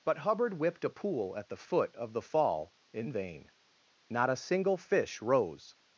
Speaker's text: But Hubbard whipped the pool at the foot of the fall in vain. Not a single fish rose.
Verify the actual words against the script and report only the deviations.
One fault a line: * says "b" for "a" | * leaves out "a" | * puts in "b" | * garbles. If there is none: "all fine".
* says "a" for "the"